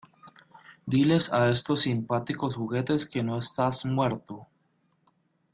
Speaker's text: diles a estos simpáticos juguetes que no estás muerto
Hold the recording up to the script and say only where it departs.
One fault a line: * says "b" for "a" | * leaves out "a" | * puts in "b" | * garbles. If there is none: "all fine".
all fine